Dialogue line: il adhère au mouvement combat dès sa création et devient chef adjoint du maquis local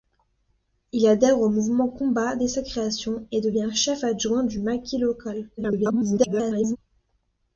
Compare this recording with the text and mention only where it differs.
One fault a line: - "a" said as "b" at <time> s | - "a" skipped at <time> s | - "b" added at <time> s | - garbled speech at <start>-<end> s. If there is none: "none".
- garbled speech at 5.6-6.8 s